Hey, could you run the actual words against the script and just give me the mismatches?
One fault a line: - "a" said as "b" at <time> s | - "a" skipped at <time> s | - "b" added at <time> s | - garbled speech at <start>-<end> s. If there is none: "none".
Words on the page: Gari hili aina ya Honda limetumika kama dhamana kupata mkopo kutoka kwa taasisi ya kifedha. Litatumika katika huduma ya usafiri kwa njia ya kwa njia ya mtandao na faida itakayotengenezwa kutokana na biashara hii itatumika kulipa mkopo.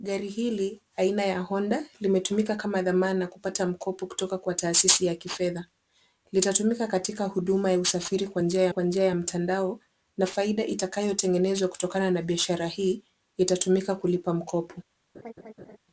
none